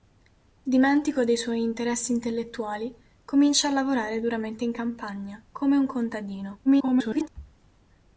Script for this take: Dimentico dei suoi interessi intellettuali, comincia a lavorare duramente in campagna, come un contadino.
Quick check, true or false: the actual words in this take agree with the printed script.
false